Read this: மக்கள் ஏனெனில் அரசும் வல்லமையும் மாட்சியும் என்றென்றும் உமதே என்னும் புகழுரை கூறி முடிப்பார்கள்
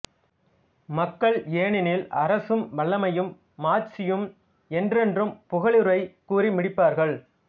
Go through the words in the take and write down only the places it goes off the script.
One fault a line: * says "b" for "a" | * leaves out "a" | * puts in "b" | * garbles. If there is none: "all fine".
* leaves out "உமதே என்னும்"